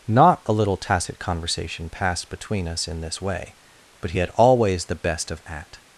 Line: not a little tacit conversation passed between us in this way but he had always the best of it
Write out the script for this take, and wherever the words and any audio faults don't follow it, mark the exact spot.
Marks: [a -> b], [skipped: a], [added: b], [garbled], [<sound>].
not a little tacit conversation passed between us in this way but he had always the best of [it -> at]